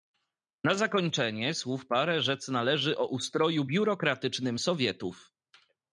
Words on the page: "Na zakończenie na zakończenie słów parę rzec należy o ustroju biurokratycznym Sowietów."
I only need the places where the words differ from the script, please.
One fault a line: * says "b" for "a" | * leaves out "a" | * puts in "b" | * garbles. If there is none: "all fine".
* leaves out "na zakończenie"